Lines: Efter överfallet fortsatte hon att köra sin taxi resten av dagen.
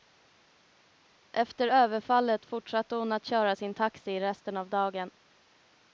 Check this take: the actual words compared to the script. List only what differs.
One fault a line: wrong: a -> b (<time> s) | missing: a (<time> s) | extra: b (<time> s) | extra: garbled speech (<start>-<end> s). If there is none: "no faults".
no faults